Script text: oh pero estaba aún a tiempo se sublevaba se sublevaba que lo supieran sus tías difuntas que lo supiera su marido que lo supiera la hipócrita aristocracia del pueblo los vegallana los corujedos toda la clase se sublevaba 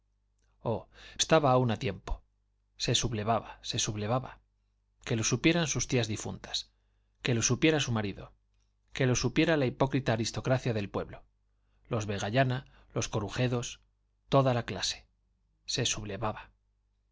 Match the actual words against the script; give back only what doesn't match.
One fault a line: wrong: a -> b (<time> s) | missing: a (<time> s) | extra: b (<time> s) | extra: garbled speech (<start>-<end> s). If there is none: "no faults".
missing: pero (0.9 s)